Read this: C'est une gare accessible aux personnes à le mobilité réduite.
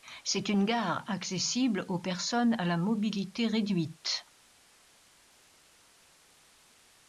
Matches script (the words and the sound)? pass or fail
fail